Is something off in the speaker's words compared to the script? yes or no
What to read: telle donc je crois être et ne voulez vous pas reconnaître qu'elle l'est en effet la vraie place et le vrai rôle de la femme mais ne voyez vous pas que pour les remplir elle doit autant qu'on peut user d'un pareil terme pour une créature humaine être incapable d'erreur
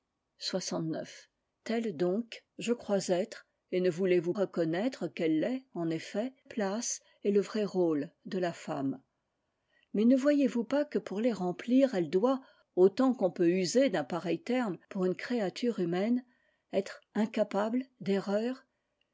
yes